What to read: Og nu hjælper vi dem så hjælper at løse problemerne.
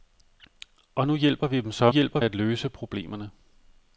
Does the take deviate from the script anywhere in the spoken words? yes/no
no